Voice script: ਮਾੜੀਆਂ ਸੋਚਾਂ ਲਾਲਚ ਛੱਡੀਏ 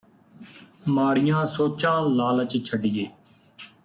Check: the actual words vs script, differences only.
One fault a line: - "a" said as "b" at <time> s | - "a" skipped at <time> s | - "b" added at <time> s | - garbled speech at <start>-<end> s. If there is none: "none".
none